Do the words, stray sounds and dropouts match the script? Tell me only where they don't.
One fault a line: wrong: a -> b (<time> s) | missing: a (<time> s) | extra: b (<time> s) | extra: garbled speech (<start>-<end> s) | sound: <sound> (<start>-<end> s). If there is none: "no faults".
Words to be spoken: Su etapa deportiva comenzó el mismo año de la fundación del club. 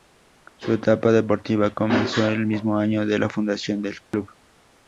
sound: dropout (4.1-4.1 s)